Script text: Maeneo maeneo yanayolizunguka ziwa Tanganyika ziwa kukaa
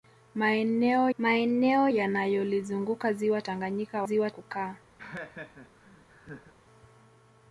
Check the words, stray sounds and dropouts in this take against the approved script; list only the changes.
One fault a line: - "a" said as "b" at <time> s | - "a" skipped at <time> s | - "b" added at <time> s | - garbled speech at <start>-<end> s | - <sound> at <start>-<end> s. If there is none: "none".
- laugh at 5.0-6.5 s